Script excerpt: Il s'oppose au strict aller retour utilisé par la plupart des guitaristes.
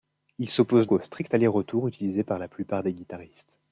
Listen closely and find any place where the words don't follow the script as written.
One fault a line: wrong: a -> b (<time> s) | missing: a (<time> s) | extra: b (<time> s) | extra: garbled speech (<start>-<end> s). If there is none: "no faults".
no faults